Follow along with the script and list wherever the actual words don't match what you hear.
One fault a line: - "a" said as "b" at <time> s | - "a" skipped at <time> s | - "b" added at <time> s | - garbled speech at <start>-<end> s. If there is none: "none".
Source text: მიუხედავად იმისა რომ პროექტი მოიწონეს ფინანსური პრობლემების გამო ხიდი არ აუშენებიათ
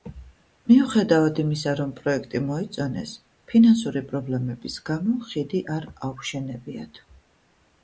none